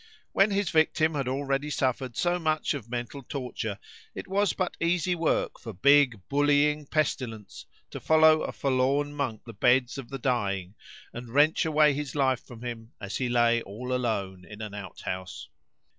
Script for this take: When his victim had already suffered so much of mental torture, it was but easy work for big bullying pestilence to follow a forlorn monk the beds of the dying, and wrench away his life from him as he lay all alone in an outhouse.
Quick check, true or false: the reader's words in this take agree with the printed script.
true